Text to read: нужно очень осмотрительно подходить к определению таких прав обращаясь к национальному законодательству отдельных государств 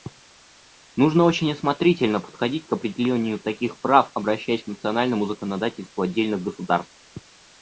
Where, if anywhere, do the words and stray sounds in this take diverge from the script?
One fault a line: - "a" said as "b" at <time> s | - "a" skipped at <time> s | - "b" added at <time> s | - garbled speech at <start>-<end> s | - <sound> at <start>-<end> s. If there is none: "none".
none